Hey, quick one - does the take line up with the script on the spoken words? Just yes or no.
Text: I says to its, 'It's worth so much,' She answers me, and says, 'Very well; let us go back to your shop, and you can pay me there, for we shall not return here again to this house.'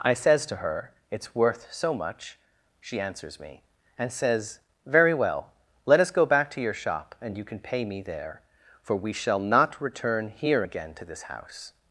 no